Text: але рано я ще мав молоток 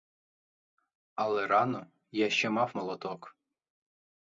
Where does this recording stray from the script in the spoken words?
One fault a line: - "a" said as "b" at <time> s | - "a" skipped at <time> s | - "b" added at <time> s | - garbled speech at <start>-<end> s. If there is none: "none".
none